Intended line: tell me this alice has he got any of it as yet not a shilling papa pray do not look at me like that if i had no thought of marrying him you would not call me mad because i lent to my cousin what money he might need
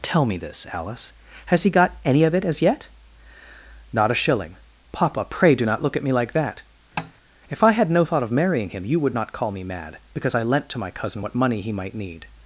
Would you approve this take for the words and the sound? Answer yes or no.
no